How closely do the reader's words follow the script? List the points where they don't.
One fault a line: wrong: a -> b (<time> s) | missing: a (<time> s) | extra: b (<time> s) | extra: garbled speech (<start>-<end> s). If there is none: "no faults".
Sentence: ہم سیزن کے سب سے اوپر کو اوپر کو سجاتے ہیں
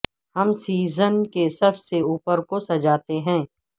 missing: اوپر کو (2.6 s)